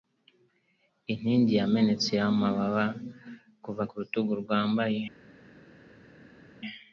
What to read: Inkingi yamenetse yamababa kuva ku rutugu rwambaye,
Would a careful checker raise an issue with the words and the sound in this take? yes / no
no